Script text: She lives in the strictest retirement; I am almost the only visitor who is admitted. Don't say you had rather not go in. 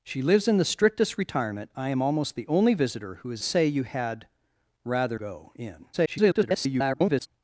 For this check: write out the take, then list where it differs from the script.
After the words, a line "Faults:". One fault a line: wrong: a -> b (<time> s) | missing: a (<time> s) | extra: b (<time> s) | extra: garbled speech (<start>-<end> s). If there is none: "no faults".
She lives in the strictest retirement; I am almost the only visitor who is say you had rather go in. [garbled]
Faults:
missing: admitted Don't (3.4 s)
missing: not (5.2 s)
extra: garbled speech (5.9-7.3 s)